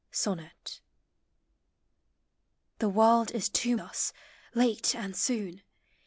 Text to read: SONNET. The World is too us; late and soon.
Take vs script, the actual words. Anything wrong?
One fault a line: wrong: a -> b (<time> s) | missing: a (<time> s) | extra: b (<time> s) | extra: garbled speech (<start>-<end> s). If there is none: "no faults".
no faults